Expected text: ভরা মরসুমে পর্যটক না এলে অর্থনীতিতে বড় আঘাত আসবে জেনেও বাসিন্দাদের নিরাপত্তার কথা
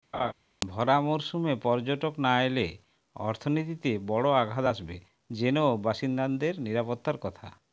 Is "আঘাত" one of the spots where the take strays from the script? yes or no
no